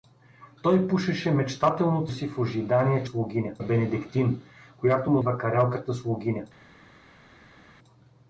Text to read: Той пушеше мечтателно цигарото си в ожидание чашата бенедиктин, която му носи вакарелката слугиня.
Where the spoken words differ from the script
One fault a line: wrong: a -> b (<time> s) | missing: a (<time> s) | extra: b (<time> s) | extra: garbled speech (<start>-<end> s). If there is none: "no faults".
missing: цигарото (2.1 s)
wrong: чашата -> слугиня (3.0 s)
missing: носи (5.2 s)